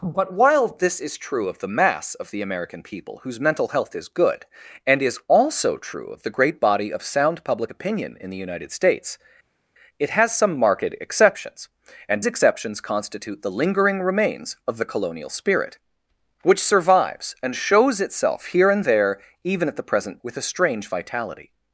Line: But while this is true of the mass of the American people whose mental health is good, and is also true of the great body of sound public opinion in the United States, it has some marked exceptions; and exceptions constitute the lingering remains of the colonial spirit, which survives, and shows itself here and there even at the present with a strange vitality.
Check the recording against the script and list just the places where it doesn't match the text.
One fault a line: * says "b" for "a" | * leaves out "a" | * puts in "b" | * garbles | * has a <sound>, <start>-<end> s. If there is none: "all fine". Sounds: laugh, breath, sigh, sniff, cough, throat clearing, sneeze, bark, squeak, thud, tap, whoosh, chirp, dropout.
all fine